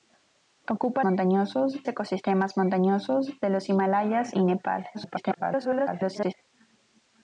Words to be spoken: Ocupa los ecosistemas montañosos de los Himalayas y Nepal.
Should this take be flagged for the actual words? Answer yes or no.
yes